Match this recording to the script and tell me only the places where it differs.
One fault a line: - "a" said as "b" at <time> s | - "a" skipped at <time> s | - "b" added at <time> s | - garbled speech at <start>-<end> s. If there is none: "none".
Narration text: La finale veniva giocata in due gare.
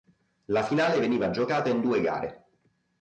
none